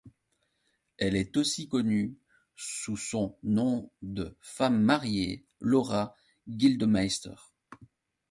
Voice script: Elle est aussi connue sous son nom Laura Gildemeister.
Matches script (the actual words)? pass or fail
fail